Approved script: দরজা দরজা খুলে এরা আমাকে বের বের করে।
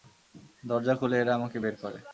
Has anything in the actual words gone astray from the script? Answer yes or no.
yes